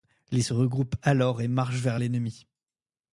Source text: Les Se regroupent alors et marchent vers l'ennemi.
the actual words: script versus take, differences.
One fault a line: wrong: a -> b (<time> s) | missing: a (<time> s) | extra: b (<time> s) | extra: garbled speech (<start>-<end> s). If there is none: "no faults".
no faults